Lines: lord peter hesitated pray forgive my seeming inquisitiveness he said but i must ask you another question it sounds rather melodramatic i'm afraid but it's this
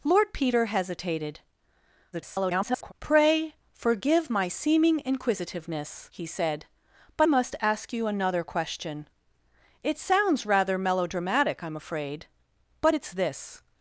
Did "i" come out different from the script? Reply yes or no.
yes